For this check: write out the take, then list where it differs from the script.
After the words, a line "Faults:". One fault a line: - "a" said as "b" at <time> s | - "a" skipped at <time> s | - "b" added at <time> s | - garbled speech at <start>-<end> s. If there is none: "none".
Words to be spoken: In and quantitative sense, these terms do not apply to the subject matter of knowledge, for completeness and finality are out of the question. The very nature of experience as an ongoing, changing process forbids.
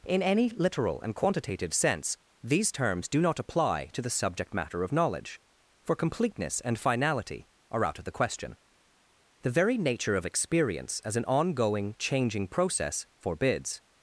In any literal and quantitative sense, these terms do not apply to the subject matter of knowledge, for completeness and finality are out of the question. The very nature of experience as an ongoing, changing process forbids.
Faults:
- "any literal" added at 0.2 s